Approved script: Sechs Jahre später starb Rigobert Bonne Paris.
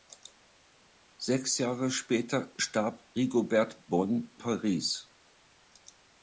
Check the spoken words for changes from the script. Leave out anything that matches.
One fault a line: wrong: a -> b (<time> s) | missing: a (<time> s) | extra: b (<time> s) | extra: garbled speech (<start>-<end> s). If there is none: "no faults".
no faults